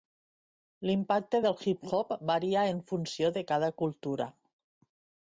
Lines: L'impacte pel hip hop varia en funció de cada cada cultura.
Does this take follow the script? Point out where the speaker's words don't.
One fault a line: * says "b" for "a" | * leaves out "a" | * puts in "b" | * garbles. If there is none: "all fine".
* says "del" for "pel"
* leaves out "cada"